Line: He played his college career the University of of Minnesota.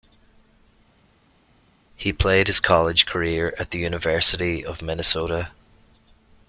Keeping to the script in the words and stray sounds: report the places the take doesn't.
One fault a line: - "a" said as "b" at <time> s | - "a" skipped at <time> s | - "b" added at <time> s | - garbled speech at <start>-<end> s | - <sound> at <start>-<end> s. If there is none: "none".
- "at" added at 3.6 s
- "of" skipped at 4.8 s